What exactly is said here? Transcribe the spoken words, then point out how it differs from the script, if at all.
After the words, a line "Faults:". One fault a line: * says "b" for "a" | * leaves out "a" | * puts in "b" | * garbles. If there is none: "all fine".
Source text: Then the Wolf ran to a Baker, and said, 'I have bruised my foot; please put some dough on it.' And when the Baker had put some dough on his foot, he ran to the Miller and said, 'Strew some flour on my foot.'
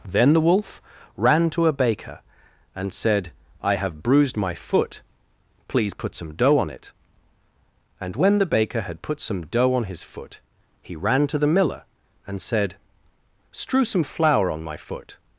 Then the Wolf ran to a Baker, and said, 'I have bruised my foot; please put some dough on it.' And when the Baker had put some dough on his foot, he ran to the Miller and said, 'Strew some flour on my foot.'
Faults:
all fine